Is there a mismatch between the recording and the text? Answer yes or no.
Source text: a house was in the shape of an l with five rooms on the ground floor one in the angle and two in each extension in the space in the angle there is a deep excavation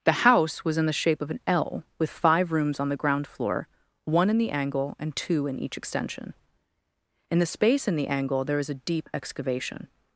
yes